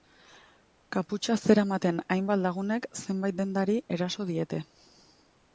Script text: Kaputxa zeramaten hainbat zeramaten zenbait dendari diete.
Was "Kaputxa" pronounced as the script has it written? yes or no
yes